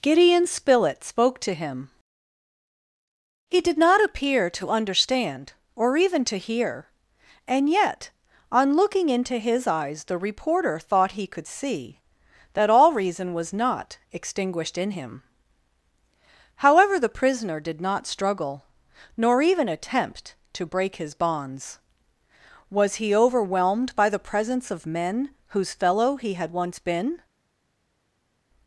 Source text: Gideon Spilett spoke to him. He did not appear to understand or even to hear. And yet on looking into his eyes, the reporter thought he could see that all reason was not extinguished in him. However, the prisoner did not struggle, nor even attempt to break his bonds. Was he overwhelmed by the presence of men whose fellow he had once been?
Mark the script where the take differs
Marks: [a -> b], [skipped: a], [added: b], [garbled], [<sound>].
Gideon Spilett spoke to him. He did not appear to understand or even to hear. And yet on looking into his eyes, the reporter thought he could see that all reason was not extinguished in him. However, the prisoner did not struggle, nor even attempt to break his bonds. Was he overwhelmed by the presence of men whose fellow he had once been?